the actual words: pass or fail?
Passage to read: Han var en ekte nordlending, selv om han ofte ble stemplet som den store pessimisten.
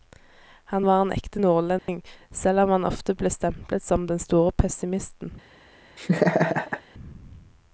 pass